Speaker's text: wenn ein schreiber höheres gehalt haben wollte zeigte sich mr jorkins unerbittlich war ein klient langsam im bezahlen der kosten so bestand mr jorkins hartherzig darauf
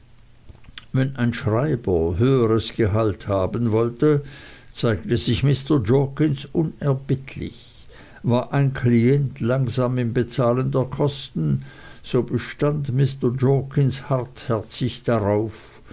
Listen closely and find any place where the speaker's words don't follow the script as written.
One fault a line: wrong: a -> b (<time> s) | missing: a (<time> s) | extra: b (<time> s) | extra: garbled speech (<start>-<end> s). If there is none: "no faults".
no faults